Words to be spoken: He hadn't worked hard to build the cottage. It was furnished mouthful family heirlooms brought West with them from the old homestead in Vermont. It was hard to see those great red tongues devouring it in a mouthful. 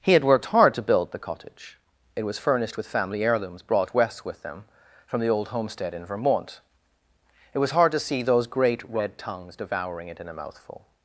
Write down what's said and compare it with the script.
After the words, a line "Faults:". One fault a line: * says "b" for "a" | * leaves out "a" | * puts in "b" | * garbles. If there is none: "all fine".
He had worked hard to build the cottage. It was furnished with family heirlooms brought West with them from the old homestead in Vermont. It was hard to see those great red tongues devouring it in a mouthful.
Faults:
* says "had" for "hadn't"
* says "with" for "mouthful"